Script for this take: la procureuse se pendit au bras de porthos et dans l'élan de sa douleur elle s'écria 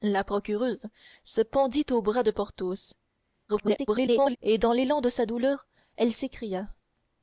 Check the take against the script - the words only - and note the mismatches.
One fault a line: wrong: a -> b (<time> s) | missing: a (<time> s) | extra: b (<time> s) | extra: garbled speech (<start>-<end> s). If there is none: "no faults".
extra: garbled speech (3.5-4.4 s)